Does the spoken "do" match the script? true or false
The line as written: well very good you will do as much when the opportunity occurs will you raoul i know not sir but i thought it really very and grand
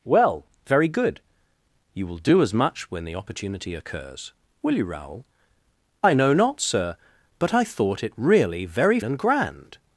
true